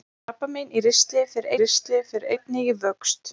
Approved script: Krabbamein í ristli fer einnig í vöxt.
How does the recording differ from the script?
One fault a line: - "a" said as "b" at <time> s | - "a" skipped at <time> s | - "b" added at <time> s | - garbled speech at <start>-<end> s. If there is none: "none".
- "ristli fer" added at 1.6 s